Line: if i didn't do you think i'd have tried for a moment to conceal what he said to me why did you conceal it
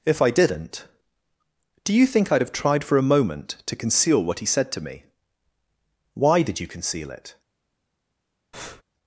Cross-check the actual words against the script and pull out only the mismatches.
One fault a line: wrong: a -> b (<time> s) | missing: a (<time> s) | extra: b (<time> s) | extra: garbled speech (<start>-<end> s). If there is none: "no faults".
no faults